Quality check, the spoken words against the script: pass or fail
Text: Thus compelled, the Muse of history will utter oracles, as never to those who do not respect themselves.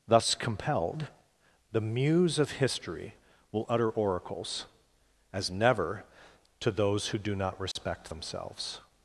pass